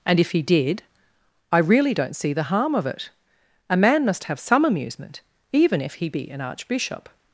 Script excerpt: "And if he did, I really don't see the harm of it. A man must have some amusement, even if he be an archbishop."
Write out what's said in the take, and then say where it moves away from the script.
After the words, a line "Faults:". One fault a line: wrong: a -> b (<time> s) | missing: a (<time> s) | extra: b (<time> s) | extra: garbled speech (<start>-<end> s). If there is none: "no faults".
"And if he did, I really don't see the harm of it. A man must have some amusement, even if he be an archbishop."
Faults:
no faults